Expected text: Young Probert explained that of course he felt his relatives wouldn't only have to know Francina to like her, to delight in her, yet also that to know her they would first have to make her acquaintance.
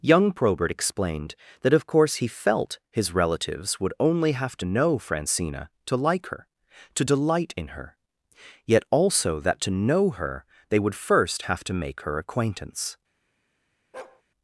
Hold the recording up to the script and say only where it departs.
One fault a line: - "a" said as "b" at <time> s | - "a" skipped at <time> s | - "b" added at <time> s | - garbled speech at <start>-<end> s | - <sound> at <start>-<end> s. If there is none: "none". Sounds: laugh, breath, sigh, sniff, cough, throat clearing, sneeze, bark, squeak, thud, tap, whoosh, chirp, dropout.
- "wouldn't" said as "would" at 3.8 s
- bark at 13.9-14.2 s